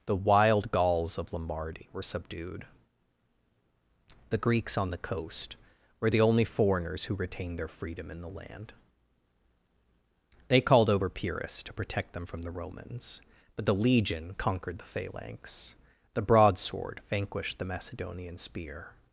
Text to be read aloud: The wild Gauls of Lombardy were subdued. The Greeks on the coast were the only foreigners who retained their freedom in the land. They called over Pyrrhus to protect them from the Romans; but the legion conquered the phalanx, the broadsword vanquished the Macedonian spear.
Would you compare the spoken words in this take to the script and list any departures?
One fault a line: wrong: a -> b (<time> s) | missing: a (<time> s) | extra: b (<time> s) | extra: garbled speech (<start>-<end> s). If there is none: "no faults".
no faults